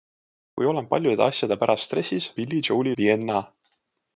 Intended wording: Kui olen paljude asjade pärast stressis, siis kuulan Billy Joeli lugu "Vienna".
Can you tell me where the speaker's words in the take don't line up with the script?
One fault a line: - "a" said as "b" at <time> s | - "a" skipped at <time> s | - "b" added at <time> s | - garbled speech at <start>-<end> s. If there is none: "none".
- "siis kuulan" skipped at 2.3 s
- "lugu" skipped at 3.0 s